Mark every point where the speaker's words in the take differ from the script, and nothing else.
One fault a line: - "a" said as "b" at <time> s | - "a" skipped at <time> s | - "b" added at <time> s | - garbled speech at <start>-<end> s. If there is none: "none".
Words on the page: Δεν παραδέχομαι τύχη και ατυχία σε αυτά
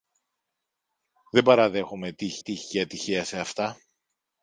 - "τύχη" added at 2.4 s